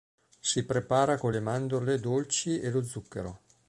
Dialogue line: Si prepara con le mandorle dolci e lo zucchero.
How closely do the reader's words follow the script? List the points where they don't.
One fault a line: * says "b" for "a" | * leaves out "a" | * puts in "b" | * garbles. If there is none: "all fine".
all fine